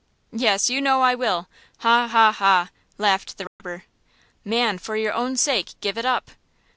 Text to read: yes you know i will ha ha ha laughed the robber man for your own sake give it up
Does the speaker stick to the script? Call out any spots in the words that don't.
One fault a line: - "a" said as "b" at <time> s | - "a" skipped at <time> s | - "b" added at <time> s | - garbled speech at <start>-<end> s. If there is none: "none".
none